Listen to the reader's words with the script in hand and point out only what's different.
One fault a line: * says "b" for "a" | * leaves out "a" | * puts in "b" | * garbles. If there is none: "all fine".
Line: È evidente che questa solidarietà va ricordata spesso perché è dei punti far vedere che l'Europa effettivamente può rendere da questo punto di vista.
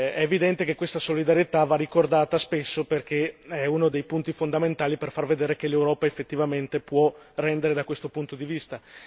* puts in "uno"
* puts in "fondamentali per"